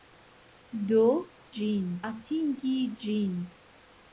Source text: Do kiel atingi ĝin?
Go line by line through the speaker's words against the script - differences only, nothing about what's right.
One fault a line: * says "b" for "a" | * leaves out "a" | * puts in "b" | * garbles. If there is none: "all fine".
* says "ĝin" for "kiel"